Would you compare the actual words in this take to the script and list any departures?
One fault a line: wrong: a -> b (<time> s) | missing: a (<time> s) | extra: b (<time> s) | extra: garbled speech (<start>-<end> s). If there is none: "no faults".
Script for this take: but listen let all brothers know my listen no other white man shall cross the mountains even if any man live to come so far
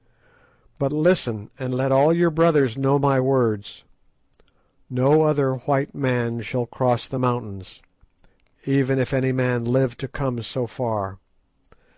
extra: and (1.6 s)
extra: your (2.1 s)
wrong: listen -> words (3.2 s)